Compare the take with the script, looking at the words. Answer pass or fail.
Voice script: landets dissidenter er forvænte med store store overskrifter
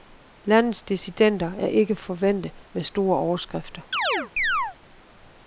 fail